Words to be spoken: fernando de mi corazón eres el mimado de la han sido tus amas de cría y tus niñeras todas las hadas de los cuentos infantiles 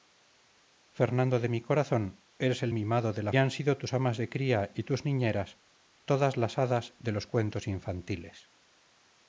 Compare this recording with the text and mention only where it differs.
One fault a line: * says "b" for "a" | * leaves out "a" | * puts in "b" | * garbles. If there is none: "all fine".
all fine